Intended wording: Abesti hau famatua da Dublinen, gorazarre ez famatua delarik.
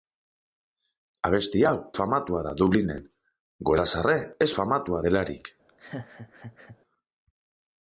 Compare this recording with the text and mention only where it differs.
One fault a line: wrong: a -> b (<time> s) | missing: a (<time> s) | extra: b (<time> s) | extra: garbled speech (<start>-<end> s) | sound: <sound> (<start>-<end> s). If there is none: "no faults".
sound: laugh (5.7-6.8 s)